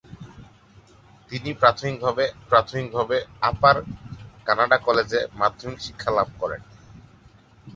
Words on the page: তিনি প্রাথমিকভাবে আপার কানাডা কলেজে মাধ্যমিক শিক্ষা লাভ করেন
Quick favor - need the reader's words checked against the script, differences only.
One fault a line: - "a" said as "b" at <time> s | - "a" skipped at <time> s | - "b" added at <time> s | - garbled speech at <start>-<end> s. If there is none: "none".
- "প্রাথমিকভাবে" added at 2.5 s